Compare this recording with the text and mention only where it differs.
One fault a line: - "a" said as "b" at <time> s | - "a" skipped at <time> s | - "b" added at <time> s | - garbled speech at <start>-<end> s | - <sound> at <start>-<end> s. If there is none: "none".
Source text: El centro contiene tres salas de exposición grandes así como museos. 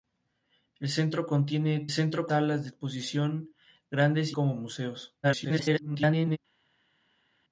- "tres" said as "centro" at 1.9 s
- "así" skipped at 4.3 s
- garbled speech at 5.2-6.4 s